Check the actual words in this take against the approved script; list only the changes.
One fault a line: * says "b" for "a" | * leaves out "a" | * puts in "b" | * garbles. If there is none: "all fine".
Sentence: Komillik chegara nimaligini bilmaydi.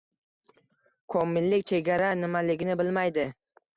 all fine